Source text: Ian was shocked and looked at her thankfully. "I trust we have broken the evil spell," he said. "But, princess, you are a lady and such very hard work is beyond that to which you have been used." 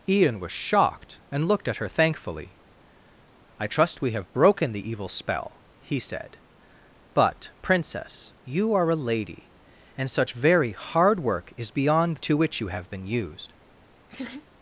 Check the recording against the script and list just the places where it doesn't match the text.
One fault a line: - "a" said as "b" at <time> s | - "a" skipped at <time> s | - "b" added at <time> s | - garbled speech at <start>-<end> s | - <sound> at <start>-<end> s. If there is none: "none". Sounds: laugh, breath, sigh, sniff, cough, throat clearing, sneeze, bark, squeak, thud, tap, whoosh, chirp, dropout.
- "that" skipped at 12.2 s
- laugh at 14.1-14.5 s